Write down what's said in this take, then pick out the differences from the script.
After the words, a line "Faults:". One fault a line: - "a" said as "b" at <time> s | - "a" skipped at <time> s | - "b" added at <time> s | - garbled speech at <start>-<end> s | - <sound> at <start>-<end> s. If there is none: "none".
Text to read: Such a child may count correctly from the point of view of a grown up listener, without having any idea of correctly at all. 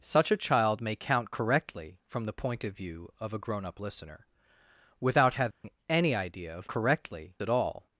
Such a child may count correctly from the point of view of a grown up listener, without having any idea of correctly at all.
Faults:
- dropout at 5.5-5.6 s